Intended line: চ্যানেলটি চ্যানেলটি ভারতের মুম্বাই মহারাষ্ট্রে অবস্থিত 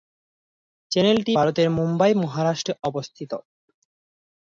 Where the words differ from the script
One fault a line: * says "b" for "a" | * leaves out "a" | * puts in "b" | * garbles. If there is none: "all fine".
* leaves out "চ্যানেলটি"